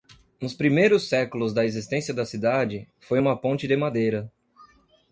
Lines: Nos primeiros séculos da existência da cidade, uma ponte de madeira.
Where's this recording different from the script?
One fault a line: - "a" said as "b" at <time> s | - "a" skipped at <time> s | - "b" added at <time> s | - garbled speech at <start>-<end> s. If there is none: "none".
- "foi" added at 3.0 s